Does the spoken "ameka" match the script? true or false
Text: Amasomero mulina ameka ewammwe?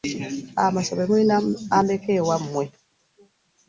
true